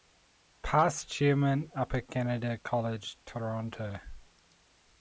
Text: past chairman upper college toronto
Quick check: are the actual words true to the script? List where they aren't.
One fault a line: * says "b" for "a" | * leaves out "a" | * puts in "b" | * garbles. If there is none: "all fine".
* puts in "canada"